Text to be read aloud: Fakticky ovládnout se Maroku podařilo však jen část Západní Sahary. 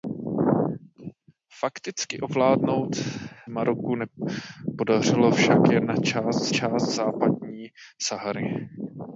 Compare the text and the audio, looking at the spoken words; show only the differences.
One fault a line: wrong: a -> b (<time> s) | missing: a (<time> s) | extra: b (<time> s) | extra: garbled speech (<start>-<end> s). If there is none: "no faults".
missing: se (3.0 s)
extra: část (6.5 s)